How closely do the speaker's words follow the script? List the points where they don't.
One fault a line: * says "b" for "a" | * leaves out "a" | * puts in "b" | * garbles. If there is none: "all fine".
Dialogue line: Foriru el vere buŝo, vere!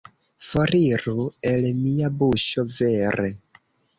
* says "mia" for "vere"